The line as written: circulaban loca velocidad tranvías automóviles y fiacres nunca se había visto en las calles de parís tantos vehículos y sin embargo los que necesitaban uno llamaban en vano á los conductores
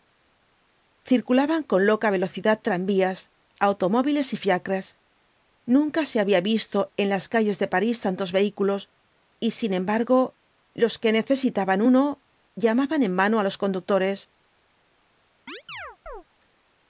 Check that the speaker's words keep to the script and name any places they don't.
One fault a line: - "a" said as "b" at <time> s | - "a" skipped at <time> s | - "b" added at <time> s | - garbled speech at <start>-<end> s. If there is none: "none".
- "con" added at 1.7 s